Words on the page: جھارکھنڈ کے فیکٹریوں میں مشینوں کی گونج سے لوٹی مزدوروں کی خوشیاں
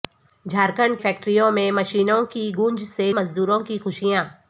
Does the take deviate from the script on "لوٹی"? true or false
true